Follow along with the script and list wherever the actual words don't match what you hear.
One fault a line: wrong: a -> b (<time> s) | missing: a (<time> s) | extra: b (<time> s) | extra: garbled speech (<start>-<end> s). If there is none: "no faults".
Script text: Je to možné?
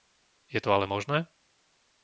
extra: ale (0.7 s)